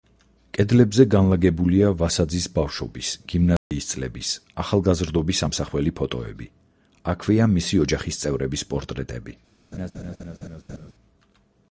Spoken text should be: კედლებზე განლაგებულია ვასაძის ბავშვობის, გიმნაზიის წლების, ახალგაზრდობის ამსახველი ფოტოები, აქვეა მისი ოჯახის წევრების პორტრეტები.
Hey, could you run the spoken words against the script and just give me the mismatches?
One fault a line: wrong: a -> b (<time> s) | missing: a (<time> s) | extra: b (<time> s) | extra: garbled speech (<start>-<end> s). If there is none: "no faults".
no faults